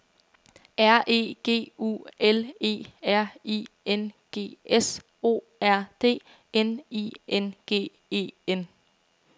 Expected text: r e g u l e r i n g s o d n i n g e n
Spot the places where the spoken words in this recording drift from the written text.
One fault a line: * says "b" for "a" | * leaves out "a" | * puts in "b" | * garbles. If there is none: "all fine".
* puts in "r"